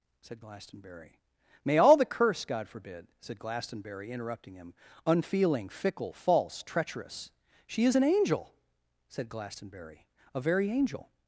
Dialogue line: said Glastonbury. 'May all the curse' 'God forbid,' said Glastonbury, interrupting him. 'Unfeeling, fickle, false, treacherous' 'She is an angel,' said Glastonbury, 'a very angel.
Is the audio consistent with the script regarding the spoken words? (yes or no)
yes